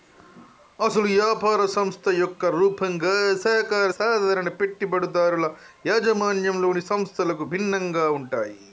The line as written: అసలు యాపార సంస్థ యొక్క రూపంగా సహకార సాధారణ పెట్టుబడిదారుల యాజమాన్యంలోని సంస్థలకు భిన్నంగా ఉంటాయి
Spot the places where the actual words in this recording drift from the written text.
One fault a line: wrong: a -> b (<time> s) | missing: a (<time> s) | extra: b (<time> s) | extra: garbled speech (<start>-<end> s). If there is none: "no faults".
no faults